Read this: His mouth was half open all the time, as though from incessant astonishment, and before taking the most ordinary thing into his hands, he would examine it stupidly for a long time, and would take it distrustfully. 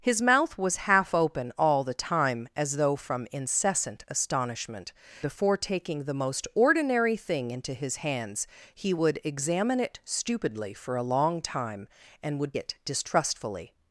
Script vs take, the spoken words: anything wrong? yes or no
yes